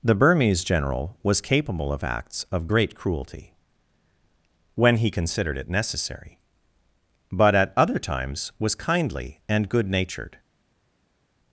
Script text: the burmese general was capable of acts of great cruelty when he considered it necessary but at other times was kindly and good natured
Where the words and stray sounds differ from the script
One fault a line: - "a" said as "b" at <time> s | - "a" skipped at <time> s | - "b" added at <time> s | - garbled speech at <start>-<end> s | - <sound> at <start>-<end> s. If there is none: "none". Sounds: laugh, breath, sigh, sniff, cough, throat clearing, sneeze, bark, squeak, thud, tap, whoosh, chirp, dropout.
none